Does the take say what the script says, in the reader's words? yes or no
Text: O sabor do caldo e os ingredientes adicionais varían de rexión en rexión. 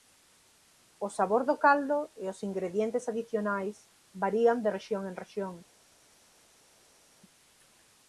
yes